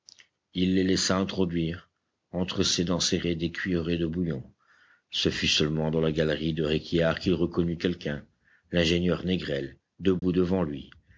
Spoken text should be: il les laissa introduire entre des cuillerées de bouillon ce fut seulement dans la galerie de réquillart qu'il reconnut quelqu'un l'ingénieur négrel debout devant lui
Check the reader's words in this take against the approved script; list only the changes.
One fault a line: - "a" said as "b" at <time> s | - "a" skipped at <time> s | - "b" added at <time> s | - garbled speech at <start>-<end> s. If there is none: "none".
- "ses dents serrées" added at 2.6 s